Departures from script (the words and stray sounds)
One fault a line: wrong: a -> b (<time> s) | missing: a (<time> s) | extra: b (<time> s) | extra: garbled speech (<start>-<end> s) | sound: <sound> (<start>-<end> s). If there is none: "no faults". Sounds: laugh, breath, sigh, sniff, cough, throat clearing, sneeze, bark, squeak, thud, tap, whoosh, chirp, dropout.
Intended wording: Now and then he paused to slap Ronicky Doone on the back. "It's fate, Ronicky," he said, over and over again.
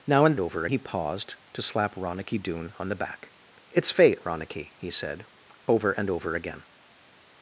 wrong: then -> over (0.4 s)